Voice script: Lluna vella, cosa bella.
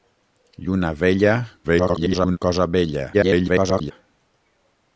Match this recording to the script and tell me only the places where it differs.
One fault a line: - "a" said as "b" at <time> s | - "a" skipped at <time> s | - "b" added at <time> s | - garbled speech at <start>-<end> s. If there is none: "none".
- garbled speech at 1.6-2.4 s
- garbled speech at 3.1-3.9 s